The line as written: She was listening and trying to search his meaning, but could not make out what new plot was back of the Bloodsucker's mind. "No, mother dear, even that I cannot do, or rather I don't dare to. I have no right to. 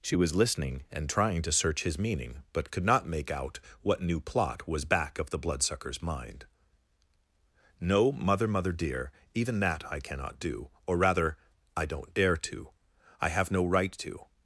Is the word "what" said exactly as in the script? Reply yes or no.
yes